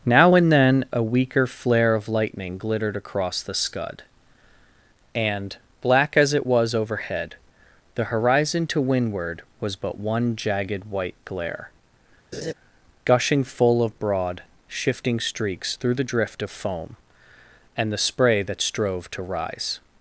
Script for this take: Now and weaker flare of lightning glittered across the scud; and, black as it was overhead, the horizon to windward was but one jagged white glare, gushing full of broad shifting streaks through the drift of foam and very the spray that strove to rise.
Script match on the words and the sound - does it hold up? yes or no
no